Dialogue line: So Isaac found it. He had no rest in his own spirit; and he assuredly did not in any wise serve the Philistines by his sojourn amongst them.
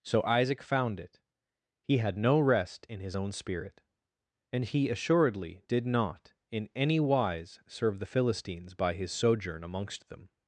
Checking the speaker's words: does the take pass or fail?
pass